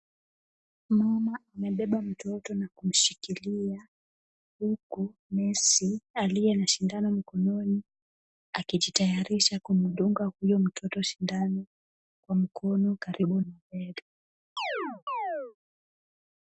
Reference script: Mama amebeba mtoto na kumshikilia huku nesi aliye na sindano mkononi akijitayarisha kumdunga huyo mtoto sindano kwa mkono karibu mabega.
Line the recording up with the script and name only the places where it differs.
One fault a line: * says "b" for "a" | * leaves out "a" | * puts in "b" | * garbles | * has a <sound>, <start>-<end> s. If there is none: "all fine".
* has a chirp, 14.6-15.6 s